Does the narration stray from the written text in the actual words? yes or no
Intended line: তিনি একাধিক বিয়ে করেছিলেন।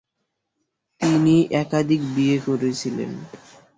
no